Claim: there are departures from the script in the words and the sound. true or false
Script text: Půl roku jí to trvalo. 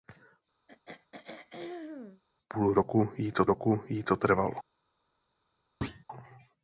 true